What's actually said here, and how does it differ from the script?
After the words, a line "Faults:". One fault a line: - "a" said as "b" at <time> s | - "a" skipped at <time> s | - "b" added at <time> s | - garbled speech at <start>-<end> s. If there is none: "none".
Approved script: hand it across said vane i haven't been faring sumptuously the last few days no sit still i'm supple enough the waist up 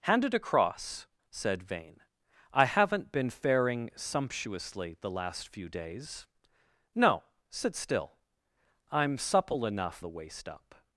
hand it across said vane i haven't been faring sumptuously the last few days no sit still i'm supple enough the waist up
Faults:
none